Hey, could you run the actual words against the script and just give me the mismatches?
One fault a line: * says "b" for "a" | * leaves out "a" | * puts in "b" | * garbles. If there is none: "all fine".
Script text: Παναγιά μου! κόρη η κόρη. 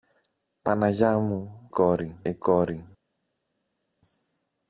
all fine